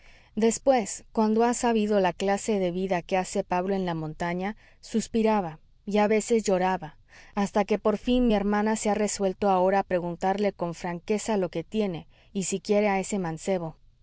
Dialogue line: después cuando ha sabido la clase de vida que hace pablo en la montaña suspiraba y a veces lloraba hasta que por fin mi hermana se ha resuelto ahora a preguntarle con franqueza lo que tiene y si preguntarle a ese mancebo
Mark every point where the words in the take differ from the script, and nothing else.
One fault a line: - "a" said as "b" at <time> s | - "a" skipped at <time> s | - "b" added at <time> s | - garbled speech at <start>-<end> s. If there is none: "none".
- "preguntarle" said as "quiere" at 12.6 s